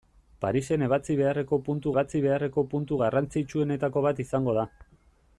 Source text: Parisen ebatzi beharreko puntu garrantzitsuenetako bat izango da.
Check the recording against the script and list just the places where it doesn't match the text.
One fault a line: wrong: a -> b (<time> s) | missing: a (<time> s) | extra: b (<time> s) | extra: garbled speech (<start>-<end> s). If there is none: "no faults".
extra: ebatzi beharreko puntu (1.9 s)